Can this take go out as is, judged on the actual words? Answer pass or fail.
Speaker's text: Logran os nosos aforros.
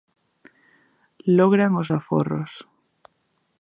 fail